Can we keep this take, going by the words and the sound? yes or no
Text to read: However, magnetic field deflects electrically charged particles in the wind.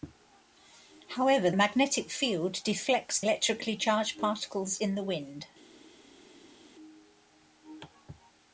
yes